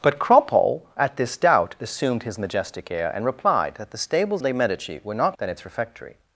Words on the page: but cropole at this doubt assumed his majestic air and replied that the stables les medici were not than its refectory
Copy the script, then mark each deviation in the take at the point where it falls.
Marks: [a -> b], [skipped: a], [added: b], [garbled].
but cropole at this doubt assumed his majestic air and replied that the stables les medici were not than its refectory